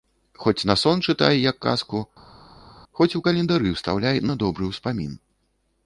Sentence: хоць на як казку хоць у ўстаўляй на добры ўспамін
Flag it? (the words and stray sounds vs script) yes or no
yes